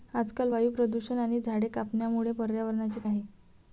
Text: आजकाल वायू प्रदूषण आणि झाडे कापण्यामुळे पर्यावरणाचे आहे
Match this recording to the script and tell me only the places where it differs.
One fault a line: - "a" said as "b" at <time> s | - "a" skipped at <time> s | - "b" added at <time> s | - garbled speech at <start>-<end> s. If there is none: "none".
none